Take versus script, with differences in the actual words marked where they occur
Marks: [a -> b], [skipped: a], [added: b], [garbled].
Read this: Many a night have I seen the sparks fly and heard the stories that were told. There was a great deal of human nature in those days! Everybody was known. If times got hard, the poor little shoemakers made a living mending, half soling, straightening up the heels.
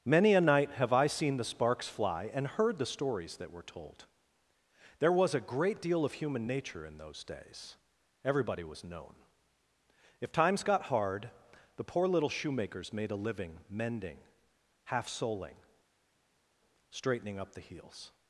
Many a night have I seen the sparks fly and heard the stories that were told. There was a great deal of human nature in those days! Everybody was known. If times got hard, the poor little shoemakers made a living mending, half soling, straightening up the heels.